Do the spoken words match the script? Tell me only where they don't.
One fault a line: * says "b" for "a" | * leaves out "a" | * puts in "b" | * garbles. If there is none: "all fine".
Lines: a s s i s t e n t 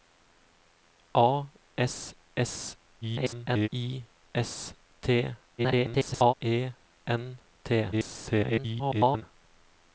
* garbles
* garbles
* garbles